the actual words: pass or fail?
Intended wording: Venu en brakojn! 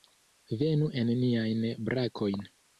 fail